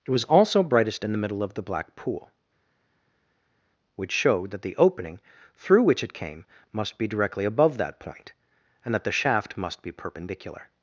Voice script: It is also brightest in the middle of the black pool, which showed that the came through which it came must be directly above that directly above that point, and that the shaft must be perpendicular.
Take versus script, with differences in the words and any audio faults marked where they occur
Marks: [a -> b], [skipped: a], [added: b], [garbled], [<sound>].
It [is -> was] also brightest in the middle of the black pool, which showed that the [came -> opening] through which it came must be directly above that [skipped: directly above that] point, and that the shaft must be perpendicular.